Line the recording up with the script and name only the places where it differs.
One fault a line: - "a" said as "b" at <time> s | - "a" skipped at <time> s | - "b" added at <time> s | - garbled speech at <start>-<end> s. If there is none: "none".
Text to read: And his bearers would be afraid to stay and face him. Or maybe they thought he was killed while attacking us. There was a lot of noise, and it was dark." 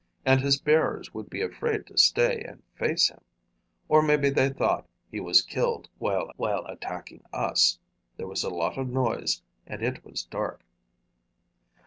- "while" added at 6.4 s